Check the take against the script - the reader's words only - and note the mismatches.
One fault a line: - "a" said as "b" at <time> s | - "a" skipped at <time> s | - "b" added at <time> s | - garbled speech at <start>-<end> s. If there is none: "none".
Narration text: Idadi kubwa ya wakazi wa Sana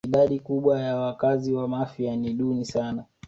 - "Mafia ni duni" added at 1.7 s